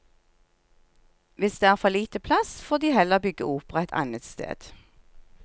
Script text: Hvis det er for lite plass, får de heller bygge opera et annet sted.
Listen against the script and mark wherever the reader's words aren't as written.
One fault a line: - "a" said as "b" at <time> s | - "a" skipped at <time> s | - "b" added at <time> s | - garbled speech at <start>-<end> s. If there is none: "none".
none